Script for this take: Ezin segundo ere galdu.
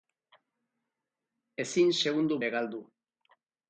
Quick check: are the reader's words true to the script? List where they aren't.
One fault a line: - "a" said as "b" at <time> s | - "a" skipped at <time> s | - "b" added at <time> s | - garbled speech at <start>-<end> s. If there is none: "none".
none